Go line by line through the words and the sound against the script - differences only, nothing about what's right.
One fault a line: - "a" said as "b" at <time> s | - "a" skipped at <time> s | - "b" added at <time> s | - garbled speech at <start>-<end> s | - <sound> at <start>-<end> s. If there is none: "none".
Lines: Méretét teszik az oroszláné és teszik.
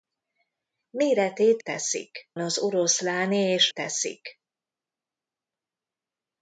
none